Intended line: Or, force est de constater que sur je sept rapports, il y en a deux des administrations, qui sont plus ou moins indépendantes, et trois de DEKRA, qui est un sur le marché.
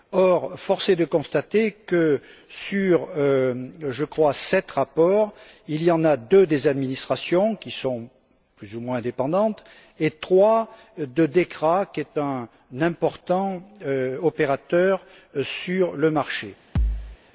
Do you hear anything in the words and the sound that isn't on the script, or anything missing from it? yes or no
yes